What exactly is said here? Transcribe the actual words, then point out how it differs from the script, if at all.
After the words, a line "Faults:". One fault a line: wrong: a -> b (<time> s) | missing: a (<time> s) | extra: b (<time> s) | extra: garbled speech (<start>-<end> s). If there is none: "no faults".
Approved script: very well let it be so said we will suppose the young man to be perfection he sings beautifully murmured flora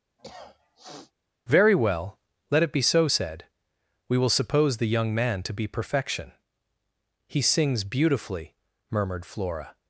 very well let it be so said we will suppose the young man to be perfection he sings beautifully murmured flora
Faults:
no faults